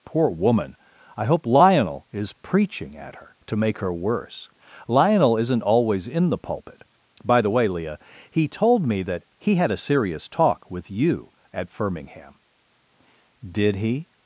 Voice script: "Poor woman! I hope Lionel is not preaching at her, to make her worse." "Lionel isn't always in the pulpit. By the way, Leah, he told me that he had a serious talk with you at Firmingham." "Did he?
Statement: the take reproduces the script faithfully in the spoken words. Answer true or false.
false